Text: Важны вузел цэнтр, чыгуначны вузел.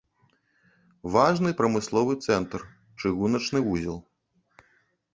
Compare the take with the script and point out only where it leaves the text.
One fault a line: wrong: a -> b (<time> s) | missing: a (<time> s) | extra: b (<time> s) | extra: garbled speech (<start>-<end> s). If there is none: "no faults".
wrong: вузел -> прамысловы (1.6 s)